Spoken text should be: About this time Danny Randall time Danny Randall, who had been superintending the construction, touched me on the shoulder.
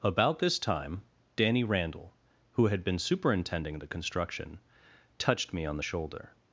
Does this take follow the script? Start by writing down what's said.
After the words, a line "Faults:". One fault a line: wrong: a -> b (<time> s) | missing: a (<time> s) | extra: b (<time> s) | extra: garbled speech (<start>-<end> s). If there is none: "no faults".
About this time Danny Randall, who had been superintending the construction, touched me on the shoulder.
Faults:
missing: time Danny Randall (2.1 s)